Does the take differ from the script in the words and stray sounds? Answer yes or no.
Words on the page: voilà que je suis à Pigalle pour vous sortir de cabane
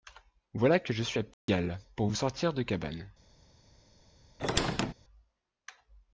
yes